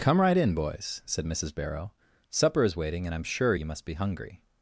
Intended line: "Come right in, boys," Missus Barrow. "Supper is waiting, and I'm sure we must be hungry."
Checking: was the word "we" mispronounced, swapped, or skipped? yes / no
yes